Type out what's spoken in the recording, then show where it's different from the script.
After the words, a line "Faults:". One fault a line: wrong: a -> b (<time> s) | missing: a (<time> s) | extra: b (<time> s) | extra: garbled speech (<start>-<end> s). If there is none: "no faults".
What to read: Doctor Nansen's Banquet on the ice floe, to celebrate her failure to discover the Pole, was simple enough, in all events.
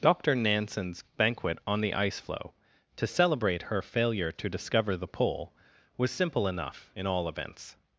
Doctor Nansen's Banquet on the ice floe, to celebrate her failure to discover the Pole, was simple enough, in all events.
Faults:
no faults